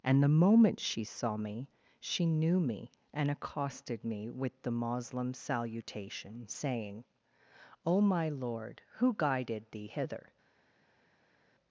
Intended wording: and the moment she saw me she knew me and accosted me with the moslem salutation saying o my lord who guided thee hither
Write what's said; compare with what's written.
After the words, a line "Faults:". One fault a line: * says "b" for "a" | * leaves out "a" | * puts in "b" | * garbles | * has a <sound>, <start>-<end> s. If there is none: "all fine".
and the moment she saw me she knew me and accosted me with the moslem salutation saying o my lord who guided thee hither
Faults:
all fine